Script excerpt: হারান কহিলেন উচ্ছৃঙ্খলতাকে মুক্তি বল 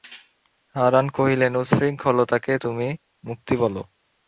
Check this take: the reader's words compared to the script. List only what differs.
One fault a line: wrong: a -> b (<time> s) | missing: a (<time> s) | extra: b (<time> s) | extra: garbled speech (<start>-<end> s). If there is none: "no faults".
extra: তুমি (2.6 s)